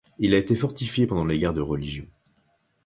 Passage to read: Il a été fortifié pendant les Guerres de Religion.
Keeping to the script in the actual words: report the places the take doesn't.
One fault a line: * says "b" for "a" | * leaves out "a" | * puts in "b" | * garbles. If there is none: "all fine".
all fine